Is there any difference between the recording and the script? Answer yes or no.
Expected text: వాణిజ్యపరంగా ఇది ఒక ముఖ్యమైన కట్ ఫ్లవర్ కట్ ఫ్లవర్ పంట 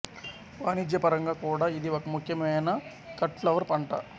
yes